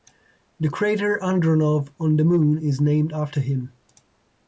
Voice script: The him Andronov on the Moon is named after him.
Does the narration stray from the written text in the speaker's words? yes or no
yes